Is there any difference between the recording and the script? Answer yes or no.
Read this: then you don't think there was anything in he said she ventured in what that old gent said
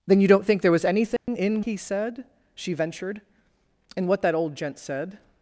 no